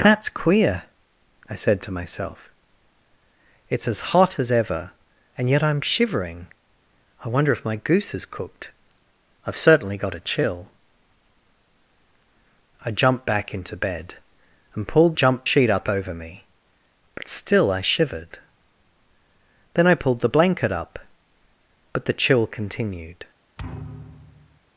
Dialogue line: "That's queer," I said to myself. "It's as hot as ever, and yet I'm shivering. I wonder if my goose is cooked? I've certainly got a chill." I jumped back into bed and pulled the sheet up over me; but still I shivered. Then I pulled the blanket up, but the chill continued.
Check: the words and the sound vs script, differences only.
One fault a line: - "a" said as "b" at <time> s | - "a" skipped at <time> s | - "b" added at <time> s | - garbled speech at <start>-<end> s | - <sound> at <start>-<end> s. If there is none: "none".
- "the" said as "jumped" at 15.1 s
- thud at 23.6-24.6 s